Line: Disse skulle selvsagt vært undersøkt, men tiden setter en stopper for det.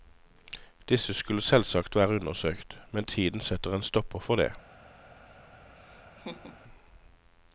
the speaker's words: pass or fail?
pass